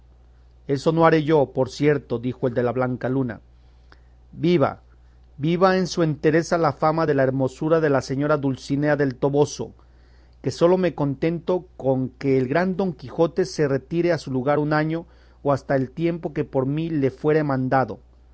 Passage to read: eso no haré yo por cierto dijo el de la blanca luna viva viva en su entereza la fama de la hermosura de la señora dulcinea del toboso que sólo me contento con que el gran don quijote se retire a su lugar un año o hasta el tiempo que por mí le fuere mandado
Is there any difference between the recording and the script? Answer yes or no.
no